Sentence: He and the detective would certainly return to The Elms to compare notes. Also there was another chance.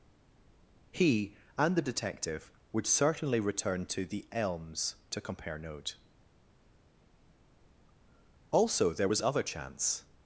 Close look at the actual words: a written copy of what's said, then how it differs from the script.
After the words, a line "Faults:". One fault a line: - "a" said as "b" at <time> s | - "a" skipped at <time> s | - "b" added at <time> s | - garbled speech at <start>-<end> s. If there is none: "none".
He and the detective would certainly return to The Elms to compare note. Also there was other chance.
Faults:
- "notes" said as "note" at 5.6 s
- "another" said as "other" at 9.2 s